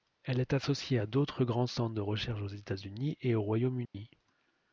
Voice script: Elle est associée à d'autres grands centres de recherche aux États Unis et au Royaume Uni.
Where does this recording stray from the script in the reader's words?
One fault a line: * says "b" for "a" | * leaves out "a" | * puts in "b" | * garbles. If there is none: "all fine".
all fine